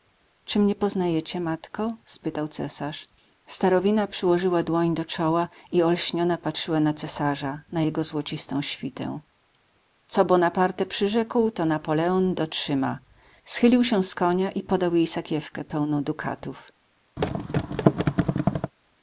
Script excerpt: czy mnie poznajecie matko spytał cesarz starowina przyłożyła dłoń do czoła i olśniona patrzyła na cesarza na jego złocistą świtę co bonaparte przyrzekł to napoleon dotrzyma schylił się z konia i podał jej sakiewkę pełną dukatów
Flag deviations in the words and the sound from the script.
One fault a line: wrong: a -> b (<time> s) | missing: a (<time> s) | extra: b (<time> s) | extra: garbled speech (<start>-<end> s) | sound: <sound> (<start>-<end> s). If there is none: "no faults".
sound: thud (17.2-18.7 s)